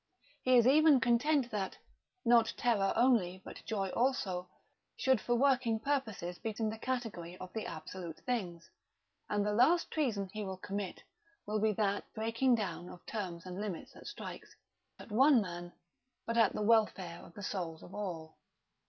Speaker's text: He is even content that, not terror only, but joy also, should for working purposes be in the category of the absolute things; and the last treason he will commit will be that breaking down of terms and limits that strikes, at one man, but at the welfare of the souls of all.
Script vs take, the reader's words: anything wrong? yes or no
no